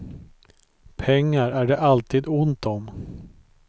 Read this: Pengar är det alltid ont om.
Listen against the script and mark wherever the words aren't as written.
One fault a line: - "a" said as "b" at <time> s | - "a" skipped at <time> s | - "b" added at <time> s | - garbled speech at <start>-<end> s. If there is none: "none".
none